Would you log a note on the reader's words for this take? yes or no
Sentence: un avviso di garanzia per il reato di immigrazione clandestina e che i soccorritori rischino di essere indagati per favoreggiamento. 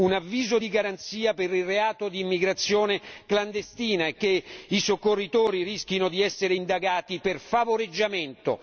no